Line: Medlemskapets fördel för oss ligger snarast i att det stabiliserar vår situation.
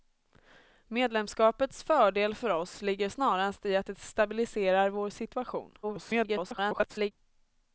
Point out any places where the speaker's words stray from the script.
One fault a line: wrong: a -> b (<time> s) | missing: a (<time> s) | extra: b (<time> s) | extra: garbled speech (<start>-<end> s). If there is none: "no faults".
extra: garbled speech (5.8-7.1 s)